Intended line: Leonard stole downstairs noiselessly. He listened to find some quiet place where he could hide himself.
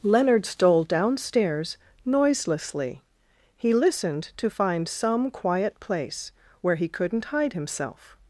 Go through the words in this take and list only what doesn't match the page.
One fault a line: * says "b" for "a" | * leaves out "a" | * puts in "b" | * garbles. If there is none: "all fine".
* says "couldn't" for "could"